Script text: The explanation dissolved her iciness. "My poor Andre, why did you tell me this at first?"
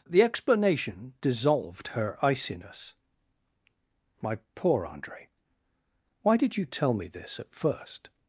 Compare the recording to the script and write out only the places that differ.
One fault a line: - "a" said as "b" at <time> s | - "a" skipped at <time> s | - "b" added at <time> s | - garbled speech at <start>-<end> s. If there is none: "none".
none